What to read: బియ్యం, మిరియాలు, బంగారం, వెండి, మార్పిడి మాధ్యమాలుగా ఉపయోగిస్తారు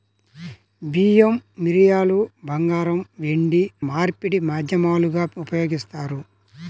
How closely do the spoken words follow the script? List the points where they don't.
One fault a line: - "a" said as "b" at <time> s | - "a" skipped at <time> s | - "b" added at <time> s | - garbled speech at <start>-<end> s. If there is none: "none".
none